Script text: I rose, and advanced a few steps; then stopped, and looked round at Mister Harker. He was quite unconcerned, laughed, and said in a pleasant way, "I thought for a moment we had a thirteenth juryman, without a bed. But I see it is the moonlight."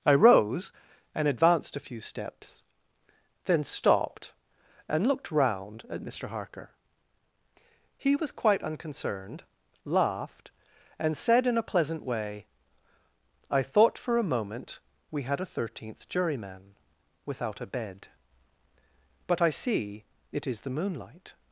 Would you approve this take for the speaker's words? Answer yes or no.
yes